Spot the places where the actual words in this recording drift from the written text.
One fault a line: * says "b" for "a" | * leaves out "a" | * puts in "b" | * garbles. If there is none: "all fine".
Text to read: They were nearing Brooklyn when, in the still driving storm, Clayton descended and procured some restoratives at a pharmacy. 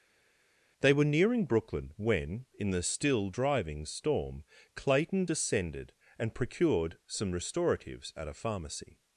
all fine